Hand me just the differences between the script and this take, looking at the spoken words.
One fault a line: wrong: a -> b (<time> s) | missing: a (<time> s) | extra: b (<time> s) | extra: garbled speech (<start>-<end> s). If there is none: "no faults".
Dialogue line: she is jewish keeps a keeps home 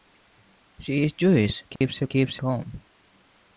no faults